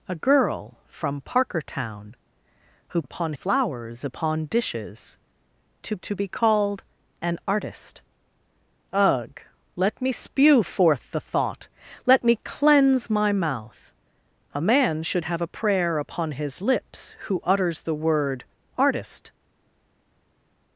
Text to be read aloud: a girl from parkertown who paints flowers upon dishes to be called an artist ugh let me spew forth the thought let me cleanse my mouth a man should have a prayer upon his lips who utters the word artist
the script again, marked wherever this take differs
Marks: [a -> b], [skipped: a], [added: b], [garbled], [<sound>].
a girl from parkertown who [paints -> upon] flowers upon dishes to [added: to] be called an artist ugh let me spew forth the thought let me cleanse my mouth a man should have a prayer upon his lips who utters the word artist